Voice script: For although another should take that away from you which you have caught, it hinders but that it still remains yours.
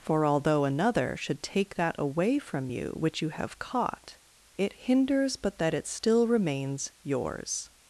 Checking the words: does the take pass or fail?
pass